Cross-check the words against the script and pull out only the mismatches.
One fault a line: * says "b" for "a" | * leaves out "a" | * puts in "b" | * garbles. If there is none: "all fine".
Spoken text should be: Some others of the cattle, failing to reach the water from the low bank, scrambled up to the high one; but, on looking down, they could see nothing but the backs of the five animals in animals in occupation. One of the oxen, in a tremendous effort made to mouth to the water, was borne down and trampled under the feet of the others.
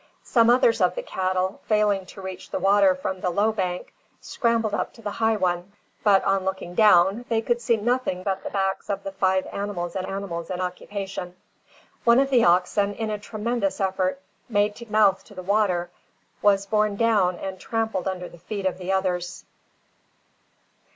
all fine